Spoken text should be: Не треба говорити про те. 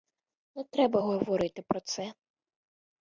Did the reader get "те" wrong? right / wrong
wrong